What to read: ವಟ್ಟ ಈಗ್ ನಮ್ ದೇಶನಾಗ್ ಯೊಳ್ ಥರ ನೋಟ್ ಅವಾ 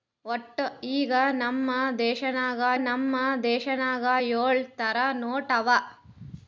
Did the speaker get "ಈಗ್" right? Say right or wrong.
right